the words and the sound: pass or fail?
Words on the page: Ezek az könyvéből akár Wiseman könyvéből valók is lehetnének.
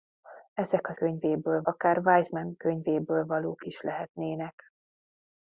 pass